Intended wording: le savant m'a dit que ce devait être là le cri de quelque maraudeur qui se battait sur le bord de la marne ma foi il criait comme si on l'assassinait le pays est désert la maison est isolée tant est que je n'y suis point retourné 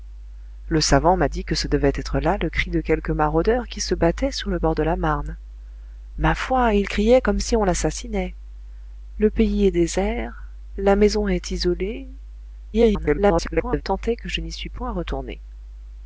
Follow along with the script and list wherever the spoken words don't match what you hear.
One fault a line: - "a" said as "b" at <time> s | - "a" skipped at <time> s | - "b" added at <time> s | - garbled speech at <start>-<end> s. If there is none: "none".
- garbled speech at 12.7-13.8 s